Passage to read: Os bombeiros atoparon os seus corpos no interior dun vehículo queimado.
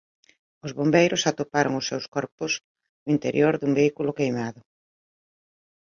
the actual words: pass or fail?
pass